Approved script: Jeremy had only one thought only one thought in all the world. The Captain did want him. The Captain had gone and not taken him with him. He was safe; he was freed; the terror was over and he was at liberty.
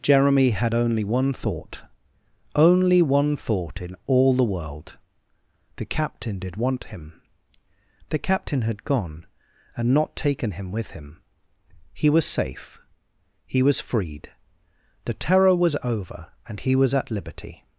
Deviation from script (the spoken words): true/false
false